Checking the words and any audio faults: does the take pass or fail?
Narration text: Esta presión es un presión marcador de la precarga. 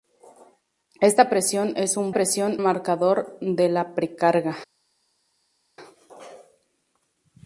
pass